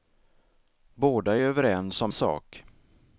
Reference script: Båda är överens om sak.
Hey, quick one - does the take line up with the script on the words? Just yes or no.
yes